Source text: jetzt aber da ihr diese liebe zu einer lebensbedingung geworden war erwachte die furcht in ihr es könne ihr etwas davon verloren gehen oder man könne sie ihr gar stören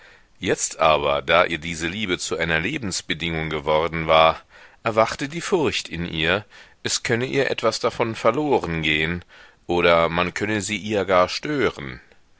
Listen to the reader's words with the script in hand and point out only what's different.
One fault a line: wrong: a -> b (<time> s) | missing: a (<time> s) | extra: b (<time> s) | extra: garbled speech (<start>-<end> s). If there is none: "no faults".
no faults